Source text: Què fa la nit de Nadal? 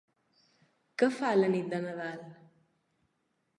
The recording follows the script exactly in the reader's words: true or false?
true